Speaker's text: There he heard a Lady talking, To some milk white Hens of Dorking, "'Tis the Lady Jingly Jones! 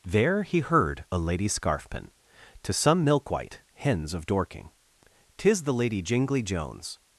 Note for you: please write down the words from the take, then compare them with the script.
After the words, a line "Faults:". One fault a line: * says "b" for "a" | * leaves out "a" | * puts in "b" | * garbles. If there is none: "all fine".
There he heard a Lady scarfpin, To some milk white Hens of Dorking, "'Tis the Lady Jingly Jones!
Faults:
* says "scarfpin" for "talking"